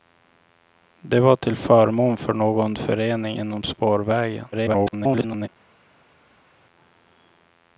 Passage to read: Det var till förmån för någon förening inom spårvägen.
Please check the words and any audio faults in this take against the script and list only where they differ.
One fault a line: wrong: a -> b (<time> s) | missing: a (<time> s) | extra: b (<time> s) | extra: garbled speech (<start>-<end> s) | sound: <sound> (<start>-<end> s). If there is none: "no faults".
extra: garbled speech (4.5-5.5 s)